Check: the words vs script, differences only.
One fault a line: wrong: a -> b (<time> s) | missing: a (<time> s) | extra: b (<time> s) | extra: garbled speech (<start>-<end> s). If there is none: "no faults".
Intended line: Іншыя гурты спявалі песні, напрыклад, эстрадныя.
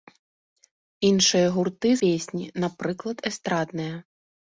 missing: спявалі (1.9 s)